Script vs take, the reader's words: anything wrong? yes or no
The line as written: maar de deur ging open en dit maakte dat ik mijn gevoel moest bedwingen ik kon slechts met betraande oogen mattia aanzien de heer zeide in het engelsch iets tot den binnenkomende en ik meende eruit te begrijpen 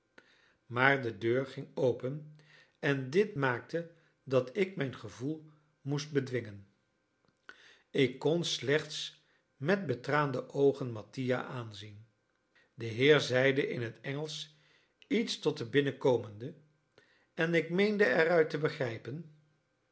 no